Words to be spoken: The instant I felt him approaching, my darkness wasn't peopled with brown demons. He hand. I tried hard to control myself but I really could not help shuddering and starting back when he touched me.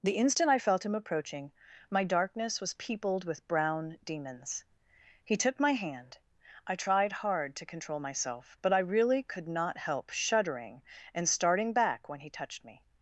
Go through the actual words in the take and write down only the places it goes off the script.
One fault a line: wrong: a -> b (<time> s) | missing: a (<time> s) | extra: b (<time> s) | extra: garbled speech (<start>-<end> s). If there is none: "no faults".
wrong: wasn't -> was (2.6 s)
extra: took my (5.3 s)